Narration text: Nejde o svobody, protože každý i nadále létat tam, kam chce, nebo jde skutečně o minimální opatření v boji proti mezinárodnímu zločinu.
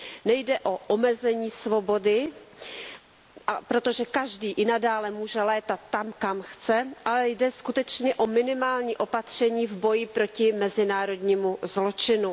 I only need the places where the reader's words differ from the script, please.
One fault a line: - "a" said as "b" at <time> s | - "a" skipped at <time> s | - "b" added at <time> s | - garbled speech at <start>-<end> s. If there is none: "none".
- "omezení" added at 0.8 s
- "může" added at 5.1 s
- "nebo" said as "ale" at 7.0 s